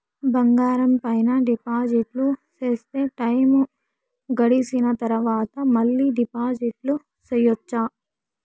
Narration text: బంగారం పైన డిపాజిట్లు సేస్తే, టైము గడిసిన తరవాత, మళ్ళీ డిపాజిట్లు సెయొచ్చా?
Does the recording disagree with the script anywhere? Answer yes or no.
no